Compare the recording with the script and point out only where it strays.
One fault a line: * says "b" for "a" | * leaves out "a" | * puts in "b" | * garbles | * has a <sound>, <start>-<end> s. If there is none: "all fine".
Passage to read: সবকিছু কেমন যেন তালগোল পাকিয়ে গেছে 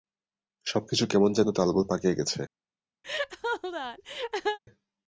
* has a laugh, 3.0-4.6 s